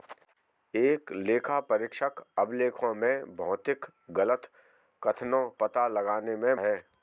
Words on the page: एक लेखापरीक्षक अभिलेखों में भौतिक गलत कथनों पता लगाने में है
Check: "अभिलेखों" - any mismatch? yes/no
no